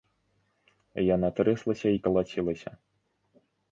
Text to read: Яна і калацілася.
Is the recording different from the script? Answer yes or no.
yes